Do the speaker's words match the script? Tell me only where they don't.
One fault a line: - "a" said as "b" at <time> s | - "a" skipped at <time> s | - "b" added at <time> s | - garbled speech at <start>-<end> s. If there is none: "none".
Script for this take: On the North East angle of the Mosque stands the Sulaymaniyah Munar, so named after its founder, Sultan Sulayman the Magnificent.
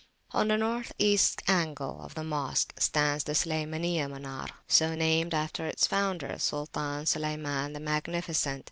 none